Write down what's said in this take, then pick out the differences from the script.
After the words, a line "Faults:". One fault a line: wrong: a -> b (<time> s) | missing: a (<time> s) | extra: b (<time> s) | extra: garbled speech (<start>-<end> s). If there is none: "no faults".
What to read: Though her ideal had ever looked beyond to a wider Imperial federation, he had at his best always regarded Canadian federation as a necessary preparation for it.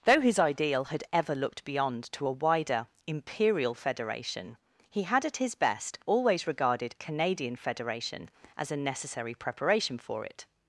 Though his ideal had ever looked beyond to a wider Imperial federation, he had at his best always regarded Canadian federation as a necessary preparation for it.
Faults:
wrong: her -> his (0.2 s)